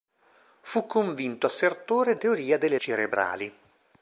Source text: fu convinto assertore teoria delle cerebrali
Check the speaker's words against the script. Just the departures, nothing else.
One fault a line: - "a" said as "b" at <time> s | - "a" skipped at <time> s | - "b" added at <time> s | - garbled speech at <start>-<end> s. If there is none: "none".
none